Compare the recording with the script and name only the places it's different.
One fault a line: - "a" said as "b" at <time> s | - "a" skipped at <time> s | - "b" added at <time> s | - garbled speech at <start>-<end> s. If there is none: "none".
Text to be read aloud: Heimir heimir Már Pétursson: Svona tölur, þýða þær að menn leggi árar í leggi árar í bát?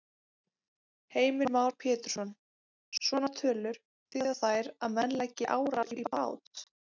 - "heimir" skipped at 1.5 s
- "leggi árar í" skipped at 6.1 s